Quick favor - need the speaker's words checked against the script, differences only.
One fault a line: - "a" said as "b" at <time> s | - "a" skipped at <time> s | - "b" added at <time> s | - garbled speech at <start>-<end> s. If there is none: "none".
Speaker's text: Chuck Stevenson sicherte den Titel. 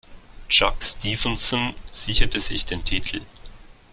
- "sich" added at 2.4 s